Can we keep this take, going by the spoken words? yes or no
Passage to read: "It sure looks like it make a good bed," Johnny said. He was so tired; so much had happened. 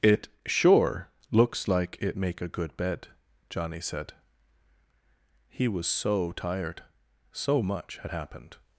yes